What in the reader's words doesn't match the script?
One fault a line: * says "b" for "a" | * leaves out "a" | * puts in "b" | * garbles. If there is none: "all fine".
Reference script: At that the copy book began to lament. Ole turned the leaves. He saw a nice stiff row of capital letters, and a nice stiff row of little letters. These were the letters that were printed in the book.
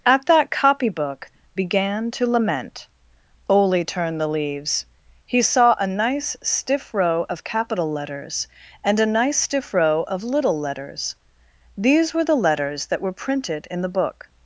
* leaves out "the"